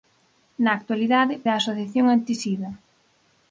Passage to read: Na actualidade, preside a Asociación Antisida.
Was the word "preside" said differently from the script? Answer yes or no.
yes